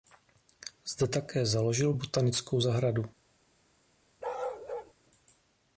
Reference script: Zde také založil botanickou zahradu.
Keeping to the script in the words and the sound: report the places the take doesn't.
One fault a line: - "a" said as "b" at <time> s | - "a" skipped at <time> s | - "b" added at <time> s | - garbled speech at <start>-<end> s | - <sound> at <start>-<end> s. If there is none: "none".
- bark at 4.2-4.9 s